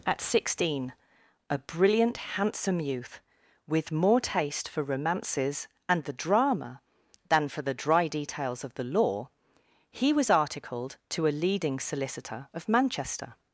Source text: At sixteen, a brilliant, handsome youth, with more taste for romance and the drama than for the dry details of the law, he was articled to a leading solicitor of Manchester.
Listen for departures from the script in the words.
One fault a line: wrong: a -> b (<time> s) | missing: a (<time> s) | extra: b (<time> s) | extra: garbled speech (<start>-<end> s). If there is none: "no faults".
wrong: romance -> romances (4.8 s)